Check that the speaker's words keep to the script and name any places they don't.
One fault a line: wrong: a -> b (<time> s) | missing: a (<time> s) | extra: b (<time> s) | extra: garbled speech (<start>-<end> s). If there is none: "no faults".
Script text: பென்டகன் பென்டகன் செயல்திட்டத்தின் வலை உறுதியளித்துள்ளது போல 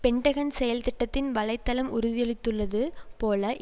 missing: பென்டகன் (0.5 s)
extra: தளம் (1.6 s)